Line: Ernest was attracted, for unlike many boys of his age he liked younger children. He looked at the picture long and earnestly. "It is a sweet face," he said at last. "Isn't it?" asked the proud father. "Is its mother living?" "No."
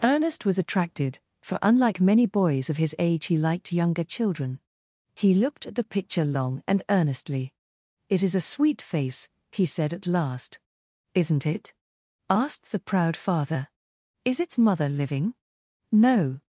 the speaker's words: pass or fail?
pass